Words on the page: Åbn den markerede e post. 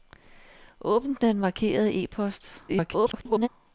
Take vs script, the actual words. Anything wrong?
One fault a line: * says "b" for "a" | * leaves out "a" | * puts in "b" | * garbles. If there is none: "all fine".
* garbles